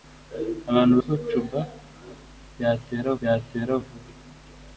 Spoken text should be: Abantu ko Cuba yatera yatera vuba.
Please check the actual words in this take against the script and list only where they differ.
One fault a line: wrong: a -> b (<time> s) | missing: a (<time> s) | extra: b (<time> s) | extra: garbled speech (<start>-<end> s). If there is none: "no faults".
no faults